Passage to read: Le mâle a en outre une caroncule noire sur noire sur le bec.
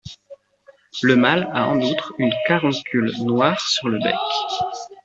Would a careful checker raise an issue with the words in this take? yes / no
yes